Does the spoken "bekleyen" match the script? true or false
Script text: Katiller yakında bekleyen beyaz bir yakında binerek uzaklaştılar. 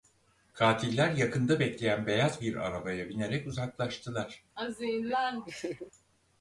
true